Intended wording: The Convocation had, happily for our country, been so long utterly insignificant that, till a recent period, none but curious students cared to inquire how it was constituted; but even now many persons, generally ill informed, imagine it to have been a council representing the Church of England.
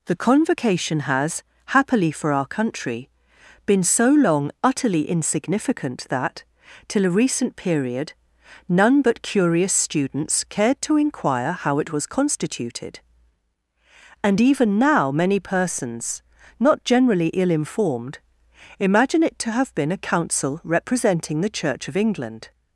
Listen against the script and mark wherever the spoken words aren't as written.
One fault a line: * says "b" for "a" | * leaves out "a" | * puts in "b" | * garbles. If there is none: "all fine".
* says "has" for "had"
* says "and" for "but"
* puts in "not"